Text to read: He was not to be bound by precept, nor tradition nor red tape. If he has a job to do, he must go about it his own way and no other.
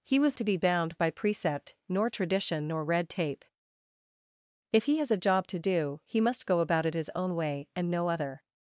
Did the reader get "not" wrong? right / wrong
wrong